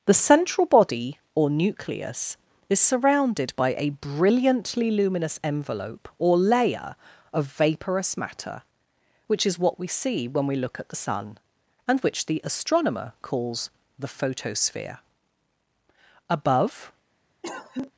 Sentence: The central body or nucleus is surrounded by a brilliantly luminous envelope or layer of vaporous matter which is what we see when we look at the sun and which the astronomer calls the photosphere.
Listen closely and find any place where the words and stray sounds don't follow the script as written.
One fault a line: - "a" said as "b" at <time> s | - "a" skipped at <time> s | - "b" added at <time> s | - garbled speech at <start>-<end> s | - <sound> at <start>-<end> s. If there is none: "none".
- "Above" added at 16.3 s
- cough at 17.4-17.9 s